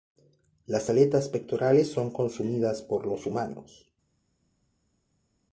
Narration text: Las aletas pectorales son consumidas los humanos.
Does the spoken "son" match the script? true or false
true